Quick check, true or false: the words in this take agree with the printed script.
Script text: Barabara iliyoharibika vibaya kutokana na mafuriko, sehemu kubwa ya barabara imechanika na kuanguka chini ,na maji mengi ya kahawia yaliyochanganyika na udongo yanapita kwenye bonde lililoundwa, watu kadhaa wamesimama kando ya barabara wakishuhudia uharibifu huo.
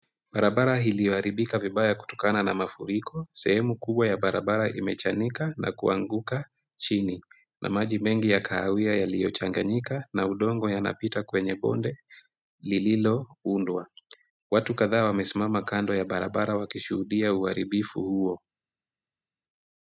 true